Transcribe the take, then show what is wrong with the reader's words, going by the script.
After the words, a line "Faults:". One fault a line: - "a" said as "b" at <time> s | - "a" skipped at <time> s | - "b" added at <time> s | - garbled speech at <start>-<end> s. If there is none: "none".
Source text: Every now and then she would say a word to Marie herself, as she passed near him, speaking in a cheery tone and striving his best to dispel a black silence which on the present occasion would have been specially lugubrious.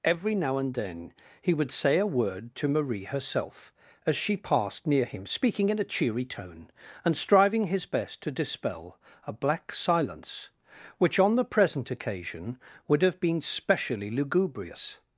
Every now and then he would say a word to Marie herself, as she passed near him, speaking in a cheery tone and striving his best to dispel a black silence which on the present occasion would have been specially lugubrious.
Faults:
- "she" said as "he" at 1.4 s